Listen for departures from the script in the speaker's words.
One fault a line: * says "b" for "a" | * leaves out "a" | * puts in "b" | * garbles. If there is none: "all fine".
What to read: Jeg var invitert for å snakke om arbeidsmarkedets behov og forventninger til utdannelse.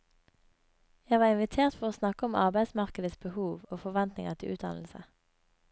all fine